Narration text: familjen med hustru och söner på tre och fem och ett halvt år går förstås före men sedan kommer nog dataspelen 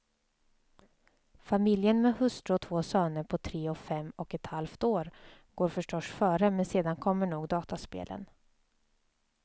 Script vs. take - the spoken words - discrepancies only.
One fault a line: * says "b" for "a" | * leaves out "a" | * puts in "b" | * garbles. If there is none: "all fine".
* puts in "två"